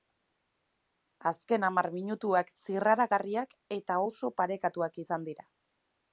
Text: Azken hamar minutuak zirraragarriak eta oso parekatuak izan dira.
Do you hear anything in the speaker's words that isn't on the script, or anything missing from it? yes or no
no